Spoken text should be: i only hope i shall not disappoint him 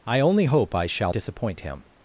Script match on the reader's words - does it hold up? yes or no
no